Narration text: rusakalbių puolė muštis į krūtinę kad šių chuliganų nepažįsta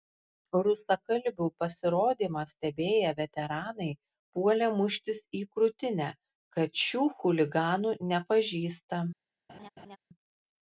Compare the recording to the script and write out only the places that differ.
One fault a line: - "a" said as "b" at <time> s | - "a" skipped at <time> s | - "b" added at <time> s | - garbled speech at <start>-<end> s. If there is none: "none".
- "pasirodymą stebėję veteranai" added at 1.6 s